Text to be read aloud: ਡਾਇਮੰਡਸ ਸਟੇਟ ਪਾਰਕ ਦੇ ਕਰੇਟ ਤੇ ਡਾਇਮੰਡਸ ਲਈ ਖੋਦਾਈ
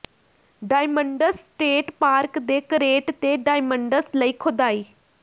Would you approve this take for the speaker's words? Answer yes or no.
yes